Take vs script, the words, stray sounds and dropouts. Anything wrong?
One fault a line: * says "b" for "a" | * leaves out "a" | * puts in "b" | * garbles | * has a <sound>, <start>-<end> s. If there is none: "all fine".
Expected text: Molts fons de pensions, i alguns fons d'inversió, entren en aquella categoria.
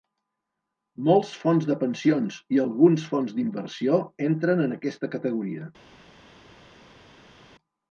* says "aquesta" for "aquella"